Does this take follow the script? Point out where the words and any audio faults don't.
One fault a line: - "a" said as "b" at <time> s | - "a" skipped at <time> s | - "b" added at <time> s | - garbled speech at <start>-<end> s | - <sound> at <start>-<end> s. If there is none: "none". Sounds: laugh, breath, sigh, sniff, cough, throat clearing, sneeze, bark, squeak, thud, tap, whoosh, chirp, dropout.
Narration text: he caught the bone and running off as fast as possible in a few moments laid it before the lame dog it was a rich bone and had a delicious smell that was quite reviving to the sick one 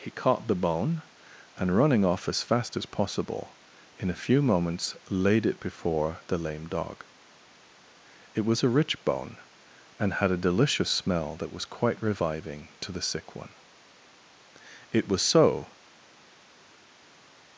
- "it was so" added at 14.9 s